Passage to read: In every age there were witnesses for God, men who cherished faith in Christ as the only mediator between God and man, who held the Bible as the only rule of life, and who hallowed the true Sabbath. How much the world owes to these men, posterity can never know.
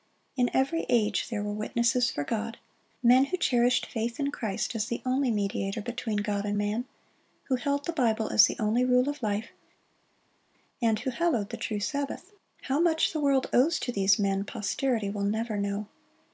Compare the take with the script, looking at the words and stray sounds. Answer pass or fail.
fail